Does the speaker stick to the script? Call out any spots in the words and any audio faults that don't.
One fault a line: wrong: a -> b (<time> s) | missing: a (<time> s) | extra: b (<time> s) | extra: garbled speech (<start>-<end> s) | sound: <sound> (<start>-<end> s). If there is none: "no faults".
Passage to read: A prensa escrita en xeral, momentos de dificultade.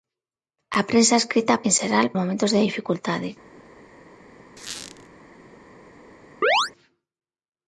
sound: squeak (4.6-5.1 s)
sound: chirp (6.4-6.7 s)